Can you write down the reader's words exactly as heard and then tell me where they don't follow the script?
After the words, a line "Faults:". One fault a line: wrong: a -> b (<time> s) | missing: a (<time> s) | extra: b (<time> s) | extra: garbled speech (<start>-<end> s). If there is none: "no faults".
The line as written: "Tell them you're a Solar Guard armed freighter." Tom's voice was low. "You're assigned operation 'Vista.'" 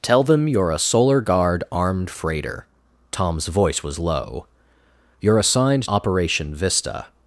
"Tell them you're a Solar Guard armed freighter." Tom's voice was low. "You're assigned operation 'Vista.'"
Faults:
no faults